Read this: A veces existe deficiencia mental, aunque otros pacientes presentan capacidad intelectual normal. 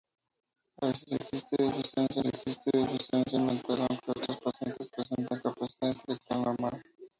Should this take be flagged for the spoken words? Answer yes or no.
yes